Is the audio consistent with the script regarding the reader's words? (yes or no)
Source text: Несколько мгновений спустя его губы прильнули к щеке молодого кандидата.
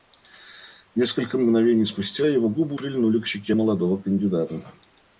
yes